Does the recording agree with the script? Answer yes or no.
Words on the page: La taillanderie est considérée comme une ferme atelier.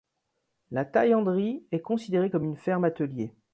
yes